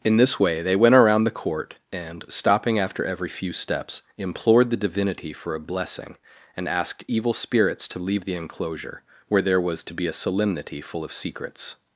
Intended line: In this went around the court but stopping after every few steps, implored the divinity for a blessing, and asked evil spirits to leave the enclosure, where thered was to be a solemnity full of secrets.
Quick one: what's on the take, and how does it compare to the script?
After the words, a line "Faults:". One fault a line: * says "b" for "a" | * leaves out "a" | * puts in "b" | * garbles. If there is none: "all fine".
In this way they went around the court and stopping after every few steps, implored the divinity for a blessing, and asked evil spirits to leave the enclosure, where there was to be a solemnity full of secrets.
Faults:
* puts in "way they"
* says "and" for "but"
* says "there" for "thered"